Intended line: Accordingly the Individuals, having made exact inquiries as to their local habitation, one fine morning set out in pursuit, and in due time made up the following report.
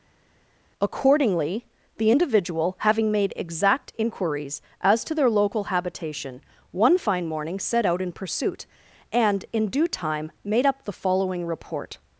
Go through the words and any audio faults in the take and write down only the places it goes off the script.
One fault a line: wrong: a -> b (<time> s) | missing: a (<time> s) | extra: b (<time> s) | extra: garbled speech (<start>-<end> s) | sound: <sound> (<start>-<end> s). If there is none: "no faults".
wrong: Individuals -> Individual (2.1 s)